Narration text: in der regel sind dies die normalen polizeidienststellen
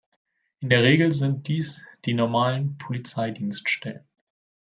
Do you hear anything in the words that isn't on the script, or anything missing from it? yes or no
no